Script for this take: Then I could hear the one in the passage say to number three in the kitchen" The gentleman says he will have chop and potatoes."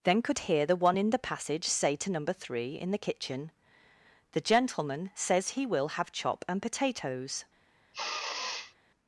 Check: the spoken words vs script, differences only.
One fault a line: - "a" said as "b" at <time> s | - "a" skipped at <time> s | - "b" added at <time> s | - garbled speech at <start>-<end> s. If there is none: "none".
- "I" skipped at 0.2 s